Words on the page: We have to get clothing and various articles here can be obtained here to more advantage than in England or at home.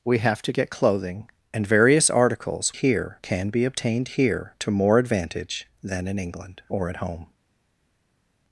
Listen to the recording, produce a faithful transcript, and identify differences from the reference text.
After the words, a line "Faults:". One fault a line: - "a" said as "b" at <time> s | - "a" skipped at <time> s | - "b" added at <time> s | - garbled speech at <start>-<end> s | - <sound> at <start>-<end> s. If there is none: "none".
We have to get clothing and various articles here can be obtained here to more advantage than in England or at home.
Faults:
none